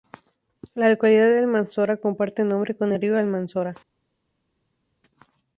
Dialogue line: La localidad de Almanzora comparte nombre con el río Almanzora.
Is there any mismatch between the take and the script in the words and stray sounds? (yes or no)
no